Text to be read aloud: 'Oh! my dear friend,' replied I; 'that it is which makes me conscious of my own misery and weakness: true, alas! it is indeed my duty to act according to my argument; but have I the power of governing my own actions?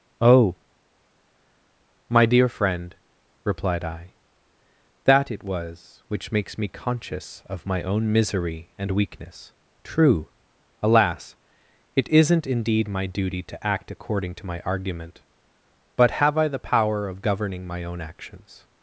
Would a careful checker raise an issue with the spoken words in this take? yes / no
yes